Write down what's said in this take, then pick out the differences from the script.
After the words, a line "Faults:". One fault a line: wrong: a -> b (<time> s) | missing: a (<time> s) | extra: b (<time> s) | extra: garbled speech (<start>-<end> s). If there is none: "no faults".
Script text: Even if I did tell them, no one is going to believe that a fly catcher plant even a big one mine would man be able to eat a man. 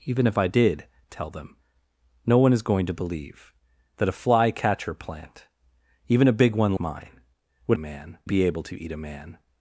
Even if I did tell them, no one is going to believe that a fly catcher plant even a big one mine would man be able to eat a man.
Faults:
no faults